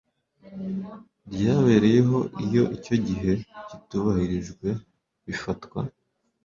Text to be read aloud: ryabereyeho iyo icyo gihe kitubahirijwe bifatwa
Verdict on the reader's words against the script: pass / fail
pass